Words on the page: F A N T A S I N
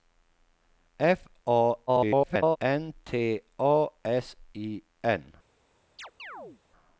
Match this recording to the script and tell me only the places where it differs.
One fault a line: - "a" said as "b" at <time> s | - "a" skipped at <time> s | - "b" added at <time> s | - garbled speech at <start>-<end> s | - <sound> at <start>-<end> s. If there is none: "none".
- garbled speech at 1.9-2.6 s
- chirp at 6.0-6.6 s